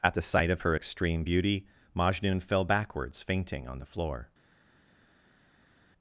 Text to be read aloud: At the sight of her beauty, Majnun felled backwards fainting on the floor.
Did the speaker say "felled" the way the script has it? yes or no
no